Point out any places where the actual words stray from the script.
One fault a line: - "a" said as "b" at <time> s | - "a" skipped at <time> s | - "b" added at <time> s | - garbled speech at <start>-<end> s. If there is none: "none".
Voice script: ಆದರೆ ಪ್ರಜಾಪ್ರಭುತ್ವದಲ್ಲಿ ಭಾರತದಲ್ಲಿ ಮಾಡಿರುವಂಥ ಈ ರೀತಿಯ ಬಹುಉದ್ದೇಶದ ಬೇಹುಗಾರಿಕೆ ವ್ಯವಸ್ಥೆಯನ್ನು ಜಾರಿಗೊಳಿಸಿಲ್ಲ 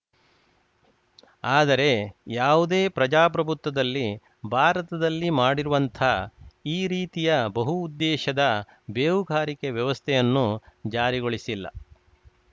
- "ಯಾವುದೇ" added at 2.4 s